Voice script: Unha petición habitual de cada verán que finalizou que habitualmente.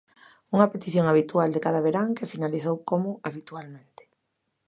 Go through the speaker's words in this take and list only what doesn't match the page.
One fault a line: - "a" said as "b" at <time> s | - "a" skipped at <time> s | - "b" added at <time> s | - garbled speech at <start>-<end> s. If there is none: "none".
- "que" said as "como" at 2.9 s